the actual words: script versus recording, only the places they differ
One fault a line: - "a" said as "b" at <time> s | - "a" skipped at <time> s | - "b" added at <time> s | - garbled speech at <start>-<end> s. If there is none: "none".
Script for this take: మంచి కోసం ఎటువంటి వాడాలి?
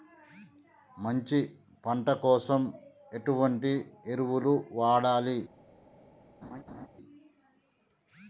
- "పంట" added at 1.9 s
- "ఎరువులు" added at 4.1 s